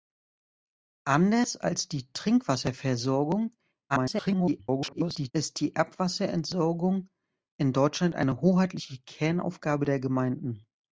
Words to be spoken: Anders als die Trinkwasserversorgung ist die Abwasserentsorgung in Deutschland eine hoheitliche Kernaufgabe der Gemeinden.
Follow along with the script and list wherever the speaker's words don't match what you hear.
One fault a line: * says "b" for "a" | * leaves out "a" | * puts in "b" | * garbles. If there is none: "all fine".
* garbles